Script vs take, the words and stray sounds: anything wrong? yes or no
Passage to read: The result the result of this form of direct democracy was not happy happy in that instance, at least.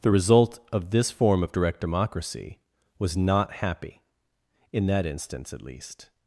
yes